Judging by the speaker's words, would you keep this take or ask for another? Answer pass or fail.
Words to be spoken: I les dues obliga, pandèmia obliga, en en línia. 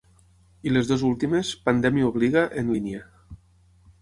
fail